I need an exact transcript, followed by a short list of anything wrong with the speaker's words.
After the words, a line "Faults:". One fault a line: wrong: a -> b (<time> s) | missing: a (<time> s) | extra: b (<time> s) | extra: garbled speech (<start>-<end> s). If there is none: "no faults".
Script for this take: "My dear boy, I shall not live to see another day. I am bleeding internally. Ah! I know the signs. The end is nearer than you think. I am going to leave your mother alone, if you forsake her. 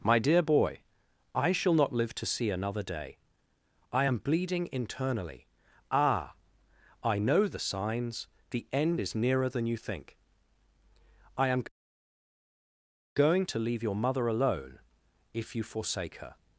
"My dear boy, I shall not live to see another day. I am bleeding internally. Ah! I know the signs. The end is nearer than you think. I am going to leave your mother alone, if you forsake her.
Faults:
no faults